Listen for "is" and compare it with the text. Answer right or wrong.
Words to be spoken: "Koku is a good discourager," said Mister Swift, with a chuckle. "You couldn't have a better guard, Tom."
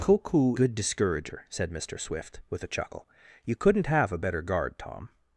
wrong